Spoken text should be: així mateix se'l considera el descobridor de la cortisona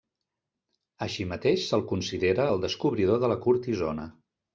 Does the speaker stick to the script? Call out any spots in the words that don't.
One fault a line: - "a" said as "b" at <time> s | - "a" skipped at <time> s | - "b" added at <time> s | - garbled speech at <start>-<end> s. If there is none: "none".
none